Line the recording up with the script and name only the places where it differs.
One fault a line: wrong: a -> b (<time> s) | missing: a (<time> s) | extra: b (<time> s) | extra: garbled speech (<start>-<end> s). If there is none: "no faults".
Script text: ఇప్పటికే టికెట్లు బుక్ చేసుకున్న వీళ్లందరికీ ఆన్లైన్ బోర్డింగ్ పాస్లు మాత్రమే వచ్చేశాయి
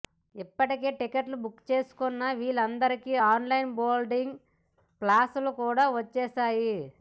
wrong: మాత్రమే -> కూడా (5.6 s)